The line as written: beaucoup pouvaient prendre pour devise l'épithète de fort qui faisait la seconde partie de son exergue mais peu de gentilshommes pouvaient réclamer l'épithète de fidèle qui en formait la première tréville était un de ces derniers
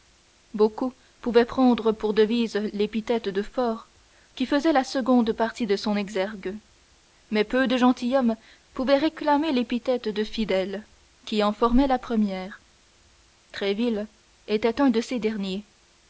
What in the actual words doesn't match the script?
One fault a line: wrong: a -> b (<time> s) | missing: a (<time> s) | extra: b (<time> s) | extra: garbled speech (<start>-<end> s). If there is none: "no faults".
no faults